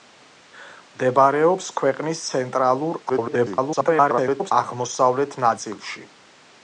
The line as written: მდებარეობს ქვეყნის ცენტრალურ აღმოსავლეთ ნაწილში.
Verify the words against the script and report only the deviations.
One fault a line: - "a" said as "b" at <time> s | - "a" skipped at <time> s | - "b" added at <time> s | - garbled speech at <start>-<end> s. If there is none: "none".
- garbled speech at 3.1-4.5 s